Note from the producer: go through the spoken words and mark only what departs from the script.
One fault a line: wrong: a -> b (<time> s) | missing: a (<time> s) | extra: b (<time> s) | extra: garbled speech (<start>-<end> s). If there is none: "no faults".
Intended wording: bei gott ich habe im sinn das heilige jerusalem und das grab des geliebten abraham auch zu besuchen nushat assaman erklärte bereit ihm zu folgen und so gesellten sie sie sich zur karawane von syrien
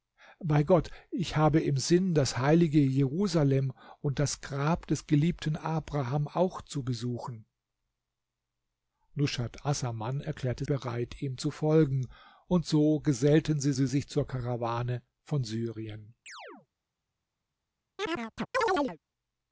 no faults